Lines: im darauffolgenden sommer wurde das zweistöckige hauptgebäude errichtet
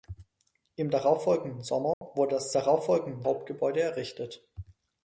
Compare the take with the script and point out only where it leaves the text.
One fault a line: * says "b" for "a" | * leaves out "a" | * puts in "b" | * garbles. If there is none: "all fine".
* says "darauffolgenden" for "zweistöckige"